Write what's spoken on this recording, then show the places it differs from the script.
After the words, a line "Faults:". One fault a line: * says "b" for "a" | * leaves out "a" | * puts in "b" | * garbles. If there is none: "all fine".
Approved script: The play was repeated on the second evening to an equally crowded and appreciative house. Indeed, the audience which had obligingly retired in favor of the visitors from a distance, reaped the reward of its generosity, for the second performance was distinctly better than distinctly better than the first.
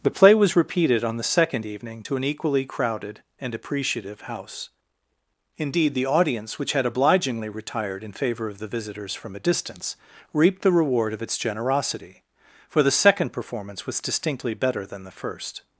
The play was repeated on the second evening to an equally crowded and appreciative house. Indeed, the audience which had obligingly retired in favor of the visitors from a distance, reaped the reward of its generosity, for the second performance was distinctly better than the first.
Faults:
* leaves out "distinctly better than"